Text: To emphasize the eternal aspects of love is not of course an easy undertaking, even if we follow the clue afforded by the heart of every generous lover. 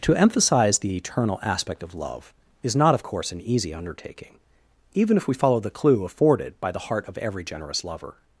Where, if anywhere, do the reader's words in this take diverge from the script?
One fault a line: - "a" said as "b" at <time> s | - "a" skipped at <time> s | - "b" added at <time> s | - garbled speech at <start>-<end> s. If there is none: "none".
- "aspects" said as "aspect" at 1.4 s